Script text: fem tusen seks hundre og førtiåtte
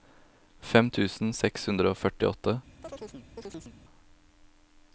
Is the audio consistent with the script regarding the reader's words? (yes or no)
yes